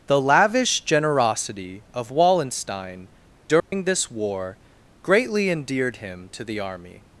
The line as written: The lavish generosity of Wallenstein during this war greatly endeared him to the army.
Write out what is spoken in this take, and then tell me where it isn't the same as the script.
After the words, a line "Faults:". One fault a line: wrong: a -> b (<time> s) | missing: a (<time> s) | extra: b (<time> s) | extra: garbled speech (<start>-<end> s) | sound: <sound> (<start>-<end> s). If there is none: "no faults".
The lavish generosity of Wallenstein during this war greatly endeared him to the army.
Faults:
sound: dropout (3.6-3.7 s)